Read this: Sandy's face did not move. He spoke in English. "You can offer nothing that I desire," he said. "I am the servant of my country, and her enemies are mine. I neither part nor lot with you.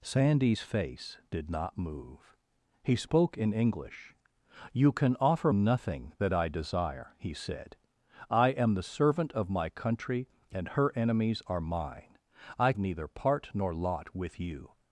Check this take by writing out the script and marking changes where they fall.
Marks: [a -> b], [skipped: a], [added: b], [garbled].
Sandy's face did not move. He spoke in English. "You can offer nothing that I desire," he said. "I am the servant of my country, and her enemies are mine. I neither part nor lot with you.